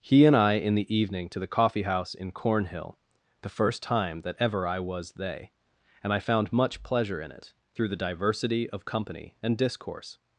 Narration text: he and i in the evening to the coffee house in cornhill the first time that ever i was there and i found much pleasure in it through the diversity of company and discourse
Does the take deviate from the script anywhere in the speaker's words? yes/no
yes